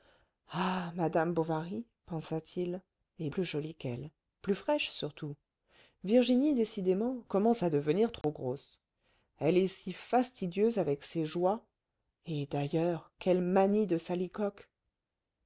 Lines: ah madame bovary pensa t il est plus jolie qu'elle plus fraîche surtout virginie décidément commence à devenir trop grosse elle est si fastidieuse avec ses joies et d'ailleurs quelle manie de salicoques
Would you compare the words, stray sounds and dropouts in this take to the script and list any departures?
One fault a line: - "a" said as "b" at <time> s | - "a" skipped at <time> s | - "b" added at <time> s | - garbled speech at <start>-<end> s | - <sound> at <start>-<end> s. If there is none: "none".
- dropout at 8.2-8.2 s